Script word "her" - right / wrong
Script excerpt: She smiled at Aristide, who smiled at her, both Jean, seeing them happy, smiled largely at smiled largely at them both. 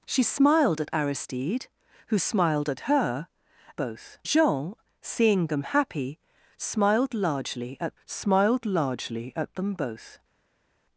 right